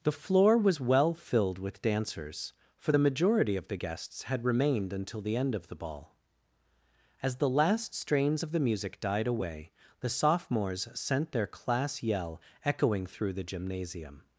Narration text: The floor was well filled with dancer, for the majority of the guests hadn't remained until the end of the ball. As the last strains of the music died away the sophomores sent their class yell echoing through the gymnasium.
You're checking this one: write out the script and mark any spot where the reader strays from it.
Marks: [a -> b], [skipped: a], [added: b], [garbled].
The floor was well filled with [dancer, -> dancers] for the majority of the guests [hadn't -> had] remained until the end of the ball. As the last strains of the music died away the sophomores sent their class yell echoing through the gymnasium.